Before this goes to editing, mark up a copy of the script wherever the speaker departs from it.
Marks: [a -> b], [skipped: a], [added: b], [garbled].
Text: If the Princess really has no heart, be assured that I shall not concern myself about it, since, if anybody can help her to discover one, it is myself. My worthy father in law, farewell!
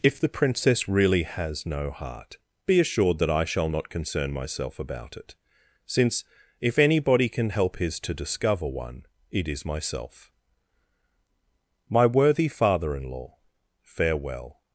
If the Princess really has no heart, be assured that I shall not concern myself about it, since, if anybody can help [her -> his] to discover one, it is myself. My worthy father in law, farewell!